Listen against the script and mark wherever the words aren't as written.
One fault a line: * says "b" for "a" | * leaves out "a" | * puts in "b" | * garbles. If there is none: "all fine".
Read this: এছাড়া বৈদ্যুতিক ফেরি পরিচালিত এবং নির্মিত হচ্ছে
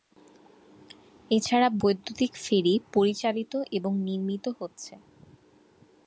all fine